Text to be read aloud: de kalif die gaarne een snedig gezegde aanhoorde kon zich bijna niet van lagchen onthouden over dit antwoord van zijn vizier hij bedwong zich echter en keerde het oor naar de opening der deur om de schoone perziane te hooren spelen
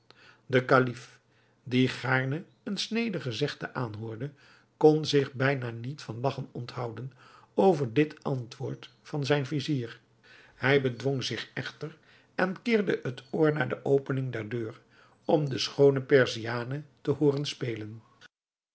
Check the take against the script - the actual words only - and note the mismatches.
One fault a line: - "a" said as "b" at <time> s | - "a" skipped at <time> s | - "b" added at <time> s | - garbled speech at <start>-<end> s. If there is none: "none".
none